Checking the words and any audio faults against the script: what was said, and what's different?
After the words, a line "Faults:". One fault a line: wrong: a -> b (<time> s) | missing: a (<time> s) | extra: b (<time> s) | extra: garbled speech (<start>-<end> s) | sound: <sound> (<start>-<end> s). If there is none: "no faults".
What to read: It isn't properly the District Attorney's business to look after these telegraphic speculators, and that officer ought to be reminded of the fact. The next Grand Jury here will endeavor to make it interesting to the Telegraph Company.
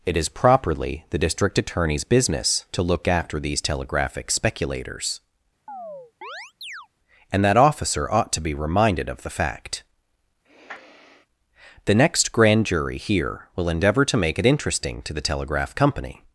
It is properly the District Attorney's business to look after these telegraphic speculators, and that officer ought to be reminded of the fact. The next Grand Jury here will endeavor to make it interesting to the Telegraph Company.
Faults:
wrong: isn't -> is (0.2 s)
sound: chirp (5.7-6.9 s)
sound: sniff (10.4-11.3 s)